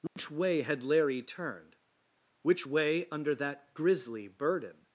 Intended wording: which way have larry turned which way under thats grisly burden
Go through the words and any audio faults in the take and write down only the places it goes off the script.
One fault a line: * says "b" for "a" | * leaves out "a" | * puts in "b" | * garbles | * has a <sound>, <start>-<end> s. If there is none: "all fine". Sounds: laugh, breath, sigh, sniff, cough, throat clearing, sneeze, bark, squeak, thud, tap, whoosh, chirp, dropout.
* has a dropout, 0.1-0.2 s
* says "had" for "have"
* says "that" for "thats"